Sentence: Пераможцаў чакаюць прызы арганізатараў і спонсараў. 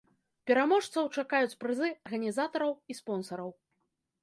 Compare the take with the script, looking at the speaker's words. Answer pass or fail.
pass